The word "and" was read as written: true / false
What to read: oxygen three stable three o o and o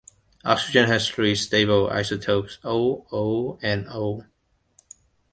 true